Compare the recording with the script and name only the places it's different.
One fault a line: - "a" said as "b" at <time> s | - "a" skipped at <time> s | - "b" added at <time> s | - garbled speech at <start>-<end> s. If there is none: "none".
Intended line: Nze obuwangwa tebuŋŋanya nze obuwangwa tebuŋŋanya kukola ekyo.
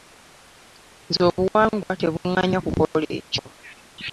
- "nze obuwangwa tebuŋŋanya" skipped at 2.6 s